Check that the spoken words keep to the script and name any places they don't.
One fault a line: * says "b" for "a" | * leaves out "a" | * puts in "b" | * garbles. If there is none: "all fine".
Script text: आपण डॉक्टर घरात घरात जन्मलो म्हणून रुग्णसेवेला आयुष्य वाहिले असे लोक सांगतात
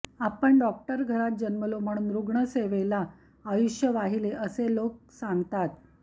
* leaves out "घरात"